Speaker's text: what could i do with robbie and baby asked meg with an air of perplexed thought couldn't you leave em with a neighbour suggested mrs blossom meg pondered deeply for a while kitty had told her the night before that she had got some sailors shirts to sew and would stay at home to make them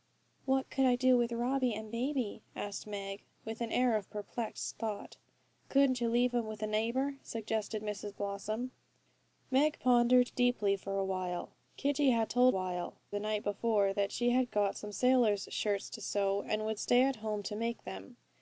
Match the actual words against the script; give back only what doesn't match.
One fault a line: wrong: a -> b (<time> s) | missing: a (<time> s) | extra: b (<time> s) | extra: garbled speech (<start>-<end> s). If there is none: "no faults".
wrong: her -> while (12.5 s)